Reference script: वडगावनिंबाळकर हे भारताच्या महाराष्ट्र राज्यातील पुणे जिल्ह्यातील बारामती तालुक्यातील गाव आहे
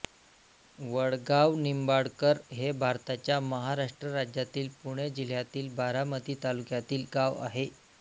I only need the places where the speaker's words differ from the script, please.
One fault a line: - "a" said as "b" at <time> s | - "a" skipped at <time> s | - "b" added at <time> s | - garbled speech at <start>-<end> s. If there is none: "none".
none